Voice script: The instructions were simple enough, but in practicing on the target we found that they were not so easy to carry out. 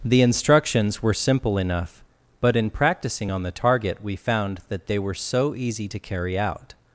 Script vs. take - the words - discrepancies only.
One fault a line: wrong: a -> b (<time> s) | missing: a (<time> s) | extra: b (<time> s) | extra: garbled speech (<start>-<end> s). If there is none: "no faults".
missing: not (5.1 s)